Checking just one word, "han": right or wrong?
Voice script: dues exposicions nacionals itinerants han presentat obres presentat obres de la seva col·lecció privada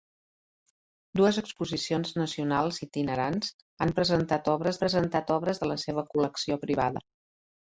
right